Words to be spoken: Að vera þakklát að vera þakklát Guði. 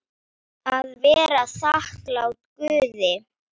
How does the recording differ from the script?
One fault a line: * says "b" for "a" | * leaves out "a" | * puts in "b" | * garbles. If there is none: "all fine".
* leaves out "að vera þakklát"